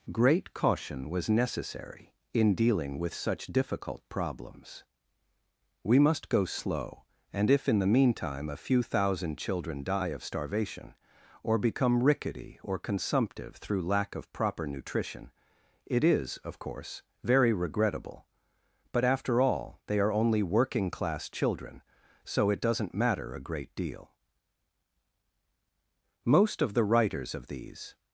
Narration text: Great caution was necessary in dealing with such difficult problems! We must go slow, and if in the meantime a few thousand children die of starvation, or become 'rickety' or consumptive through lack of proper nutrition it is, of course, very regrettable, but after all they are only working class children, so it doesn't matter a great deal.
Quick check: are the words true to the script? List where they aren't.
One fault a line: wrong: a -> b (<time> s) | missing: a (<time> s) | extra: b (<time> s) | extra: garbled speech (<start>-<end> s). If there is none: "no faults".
extra: Most of the writers of these (26.2 s)